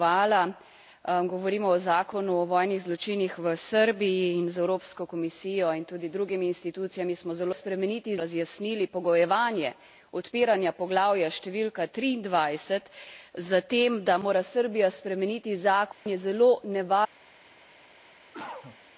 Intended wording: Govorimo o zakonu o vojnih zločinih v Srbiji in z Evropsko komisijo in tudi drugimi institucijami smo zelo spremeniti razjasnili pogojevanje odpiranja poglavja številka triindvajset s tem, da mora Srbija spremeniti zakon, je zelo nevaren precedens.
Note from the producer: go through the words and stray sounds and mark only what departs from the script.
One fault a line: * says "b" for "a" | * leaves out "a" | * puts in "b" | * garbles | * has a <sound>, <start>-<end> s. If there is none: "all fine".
* has a dropout, 15.9-16.1 s
* has a cough, 18.3-18.8 s